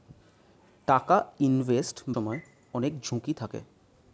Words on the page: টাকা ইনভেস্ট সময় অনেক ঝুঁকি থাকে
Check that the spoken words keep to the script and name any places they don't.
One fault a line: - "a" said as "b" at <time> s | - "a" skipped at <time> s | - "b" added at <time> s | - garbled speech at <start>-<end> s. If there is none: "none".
none